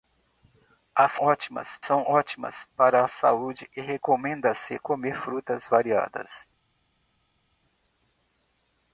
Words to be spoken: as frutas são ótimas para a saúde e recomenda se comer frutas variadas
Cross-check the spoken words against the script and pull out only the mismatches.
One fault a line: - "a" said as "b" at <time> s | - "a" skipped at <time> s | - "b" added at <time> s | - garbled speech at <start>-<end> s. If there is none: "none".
- "frutas" said as "ótimas" at 1.2 s